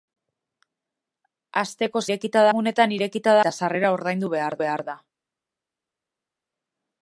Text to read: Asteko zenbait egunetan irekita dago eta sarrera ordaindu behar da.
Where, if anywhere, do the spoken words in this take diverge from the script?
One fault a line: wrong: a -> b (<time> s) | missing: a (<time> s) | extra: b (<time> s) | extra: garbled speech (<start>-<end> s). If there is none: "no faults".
wrong: zenbait -> irekita (2.1 s)
missing: dago (3.4 s)
extra: behar (4.6 s)